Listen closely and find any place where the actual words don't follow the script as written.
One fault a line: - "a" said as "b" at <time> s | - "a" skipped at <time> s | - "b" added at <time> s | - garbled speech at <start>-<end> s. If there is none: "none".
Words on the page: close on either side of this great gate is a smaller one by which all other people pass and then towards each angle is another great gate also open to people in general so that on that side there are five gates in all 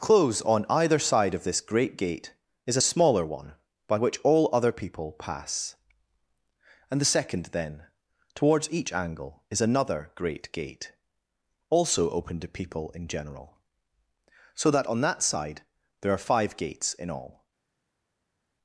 - "the second" added at 7.0 s